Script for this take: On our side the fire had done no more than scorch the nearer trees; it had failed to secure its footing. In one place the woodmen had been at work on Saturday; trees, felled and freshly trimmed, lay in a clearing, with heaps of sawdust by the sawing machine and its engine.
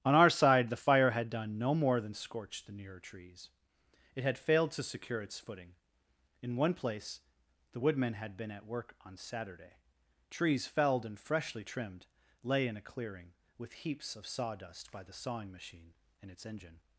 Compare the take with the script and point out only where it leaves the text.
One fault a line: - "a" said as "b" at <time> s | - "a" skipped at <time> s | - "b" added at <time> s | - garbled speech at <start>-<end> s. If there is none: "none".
none